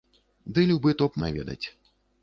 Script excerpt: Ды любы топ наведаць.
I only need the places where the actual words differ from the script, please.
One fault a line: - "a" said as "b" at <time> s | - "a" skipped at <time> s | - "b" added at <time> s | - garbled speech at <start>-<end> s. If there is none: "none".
none